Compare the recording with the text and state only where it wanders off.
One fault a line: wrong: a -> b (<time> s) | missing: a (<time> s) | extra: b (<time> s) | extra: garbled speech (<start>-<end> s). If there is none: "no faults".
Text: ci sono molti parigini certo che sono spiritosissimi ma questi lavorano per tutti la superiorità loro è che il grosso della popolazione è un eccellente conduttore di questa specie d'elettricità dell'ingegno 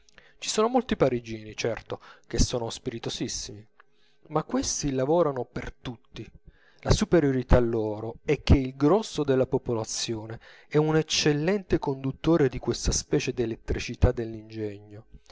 no faults